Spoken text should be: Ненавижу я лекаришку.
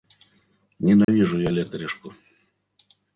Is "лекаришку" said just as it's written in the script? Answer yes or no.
yes